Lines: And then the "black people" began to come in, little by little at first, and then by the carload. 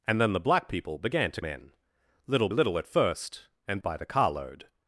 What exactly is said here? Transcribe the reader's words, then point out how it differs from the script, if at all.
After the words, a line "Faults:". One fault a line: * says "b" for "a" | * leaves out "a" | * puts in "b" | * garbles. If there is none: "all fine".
And then the "black people" began to in, little little at first, and by the carload.
Faults:
* leaves out "come"
* leaves out "by"
* leaves out "then"